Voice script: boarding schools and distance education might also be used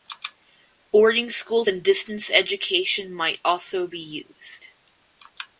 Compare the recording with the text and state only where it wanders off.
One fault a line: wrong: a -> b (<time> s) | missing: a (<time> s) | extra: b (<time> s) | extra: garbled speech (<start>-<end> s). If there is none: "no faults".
no faults